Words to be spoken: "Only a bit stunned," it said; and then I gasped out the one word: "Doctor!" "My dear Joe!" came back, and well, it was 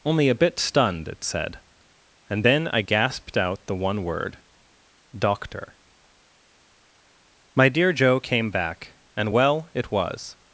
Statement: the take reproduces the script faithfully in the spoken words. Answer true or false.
true